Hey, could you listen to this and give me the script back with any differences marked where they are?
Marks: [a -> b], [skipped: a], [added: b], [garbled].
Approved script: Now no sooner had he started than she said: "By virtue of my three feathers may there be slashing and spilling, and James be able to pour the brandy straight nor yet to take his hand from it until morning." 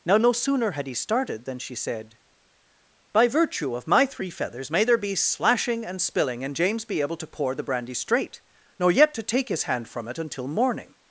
Now no sooner had he started than she said: "By virtue of my three feathers may there be slashing and spilling, and James be able to pour the brandy straight nor yet to take his hand from it until morning."